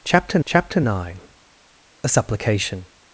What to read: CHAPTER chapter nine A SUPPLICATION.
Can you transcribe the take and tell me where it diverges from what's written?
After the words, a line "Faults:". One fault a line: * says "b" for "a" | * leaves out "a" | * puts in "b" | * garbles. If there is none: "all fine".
CHAPTER chapter nine A SUPPLICATION.
Faults:
all fine